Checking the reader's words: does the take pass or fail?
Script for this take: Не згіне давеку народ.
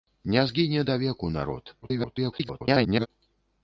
fail